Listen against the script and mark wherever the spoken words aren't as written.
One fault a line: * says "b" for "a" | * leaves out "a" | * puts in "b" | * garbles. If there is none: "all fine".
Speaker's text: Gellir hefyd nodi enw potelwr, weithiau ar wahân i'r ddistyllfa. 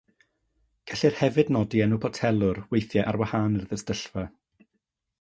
all fine